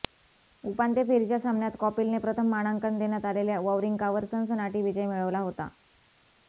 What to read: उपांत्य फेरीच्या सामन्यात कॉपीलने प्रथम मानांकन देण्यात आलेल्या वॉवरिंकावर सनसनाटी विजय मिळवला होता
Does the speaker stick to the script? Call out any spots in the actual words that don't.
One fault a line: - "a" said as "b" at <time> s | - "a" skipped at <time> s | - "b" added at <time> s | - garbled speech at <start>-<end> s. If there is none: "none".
none